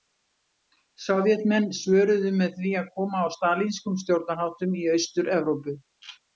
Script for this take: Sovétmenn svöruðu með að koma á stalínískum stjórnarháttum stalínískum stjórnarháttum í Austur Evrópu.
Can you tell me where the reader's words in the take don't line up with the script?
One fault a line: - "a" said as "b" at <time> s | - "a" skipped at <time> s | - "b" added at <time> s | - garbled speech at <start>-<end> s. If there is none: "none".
- "því" added at 2.6 s
- "stalínískum stjórnarháttum" skipped at 4.8 s